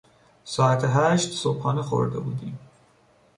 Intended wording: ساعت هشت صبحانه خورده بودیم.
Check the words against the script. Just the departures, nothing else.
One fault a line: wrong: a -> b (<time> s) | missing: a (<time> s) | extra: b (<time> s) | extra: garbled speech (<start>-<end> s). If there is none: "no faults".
no faults